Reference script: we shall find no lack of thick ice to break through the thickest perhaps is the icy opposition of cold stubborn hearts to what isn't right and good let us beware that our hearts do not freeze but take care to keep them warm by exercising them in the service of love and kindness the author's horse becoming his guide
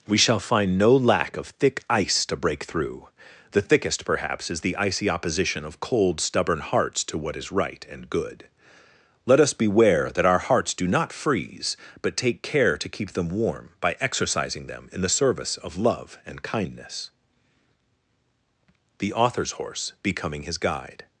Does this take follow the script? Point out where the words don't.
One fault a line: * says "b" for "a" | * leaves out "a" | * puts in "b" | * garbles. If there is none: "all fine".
* says "is" for "isn't"